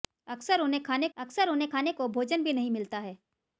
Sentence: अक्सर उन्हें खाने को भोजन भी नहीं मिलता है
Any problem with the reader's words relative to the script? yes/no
yes